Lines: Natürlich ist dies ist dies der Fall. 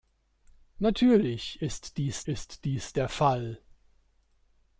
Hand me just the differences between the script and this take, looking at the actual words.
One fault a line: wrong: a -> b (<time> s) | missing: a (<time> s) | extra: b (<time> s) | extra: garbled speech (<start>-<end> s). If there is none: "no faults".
no faults